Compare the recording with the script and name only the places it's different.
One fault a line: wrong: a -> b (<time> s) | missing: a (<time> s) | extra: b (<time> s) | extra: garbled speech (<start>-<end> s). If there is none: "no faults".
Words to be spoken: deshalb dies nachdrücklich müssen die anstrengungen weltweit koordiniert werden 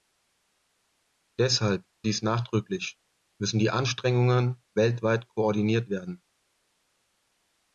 no faults